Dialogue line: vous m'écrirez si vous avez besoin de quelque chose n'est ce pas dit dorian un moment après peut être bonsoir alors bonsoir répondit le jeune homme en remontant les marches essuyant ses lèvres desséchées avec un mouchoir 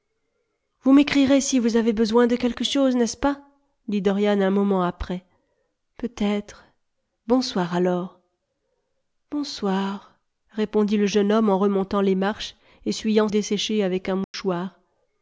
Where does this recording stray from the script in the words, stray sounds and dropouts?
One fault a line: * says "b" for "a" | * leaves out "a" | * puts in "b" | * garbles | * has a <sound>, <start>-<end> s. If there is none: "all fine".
* leaves out "ses lèvres"
* has a dropout, 14.2-14.3 s